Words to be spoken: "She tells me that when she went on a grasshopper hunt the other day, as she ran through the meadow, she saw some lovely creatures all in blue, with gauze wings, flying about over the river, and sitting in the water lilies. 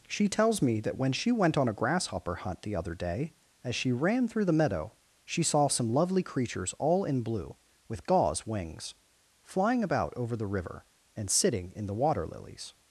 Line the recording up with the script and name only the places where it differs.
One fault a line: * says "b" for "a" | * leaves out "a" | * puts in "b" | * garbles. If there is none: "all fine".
all fine